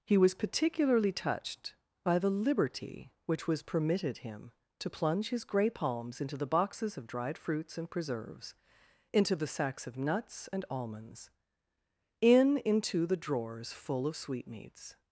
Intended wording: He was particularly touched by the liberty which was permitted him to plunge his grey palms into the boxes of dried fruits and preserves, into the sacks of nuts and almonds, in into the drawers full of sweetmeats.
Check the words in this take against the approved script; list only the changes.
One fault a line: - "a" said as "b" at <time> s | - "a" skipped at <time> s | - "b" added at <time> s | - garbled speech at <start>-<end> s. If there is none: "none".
none